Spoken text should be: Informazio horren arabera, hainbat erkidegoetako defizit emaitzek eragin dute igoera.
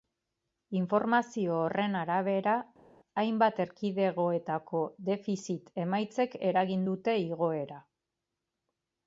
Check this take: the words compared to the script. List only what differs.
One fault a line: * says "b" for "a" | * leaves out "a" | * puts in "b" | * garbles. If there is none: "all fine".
all fine